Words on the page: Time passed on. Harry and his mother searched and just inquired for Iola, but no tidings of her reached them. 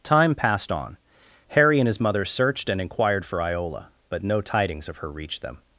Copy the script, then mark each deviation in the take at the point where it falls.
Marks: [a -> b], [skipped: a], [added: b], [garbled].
Time passed on. Harry and his mother searched and [skipped: just] inquired for Iola, but no tidings of her reached them.